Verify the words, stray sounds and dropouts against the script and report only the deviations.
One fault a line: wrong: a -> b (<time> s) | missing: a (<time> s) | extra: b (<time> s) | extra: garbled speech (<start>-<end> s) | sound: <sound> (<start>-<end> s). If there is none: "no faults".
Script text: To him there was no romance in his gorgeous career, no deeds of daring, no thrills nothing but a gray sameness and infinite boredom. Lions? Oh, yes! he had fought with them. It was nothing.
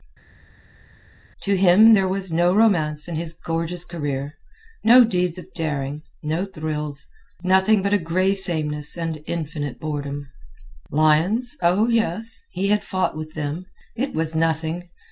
no faults